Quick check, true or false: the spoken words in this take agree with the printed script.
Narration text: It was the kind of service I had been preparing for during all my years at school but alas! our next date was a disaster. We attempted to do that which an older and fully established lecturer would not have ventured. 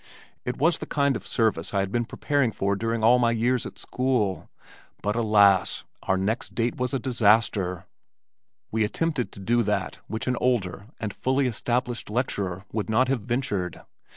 true